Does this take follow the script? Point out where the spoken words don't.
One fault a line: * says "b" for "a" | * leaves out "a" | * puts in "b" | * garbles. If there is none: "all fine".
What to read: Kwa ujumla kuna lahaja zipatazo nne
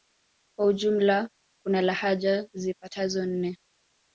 all fine